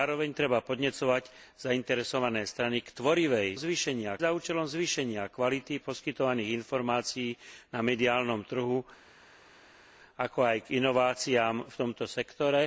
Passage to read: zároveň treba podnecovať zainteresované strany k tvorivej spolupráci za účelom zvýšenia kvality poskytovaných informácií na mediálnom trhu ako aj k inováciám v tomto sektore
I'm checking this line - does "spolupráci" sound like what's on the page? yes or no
no